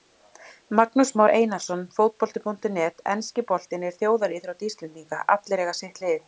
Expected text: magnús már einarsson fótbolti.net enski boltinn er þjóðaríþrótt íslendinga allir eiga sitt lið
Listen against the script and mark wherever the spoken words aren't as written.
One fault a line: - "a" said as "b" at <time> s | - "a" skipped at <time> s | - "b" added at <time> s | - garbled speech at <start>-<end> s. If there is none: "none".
none